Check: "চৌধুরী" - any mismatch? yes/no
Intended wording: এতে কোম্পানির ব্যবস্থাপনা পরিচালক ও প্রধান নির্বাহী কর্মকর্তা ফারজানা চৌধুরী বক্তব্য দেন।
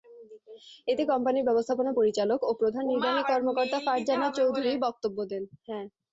no